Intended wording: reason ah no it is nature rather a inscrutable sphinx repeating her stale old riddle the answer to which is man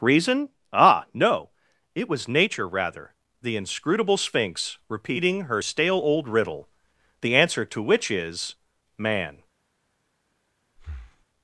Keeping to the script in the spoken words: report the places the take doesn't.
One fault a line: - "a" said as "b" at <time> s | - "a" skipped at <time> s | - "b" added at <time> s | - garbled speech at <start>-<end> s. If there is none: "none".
- "is" said as "was" at 2.1 s
- "a" said as "the" at 3.4 s